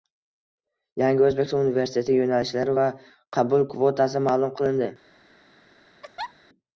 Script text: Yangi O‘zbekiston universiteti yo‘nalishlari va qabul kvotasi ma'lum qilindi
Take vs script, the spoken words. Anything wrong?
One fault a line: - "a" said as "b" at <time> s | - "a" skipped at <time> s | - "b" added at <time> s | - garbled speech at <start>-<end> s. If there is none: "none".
none